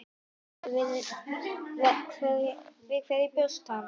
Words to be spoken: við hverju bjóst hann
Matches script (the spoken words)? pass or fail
pass